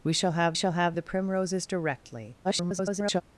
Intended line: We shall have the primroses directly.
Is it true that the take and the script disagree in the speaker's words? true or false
true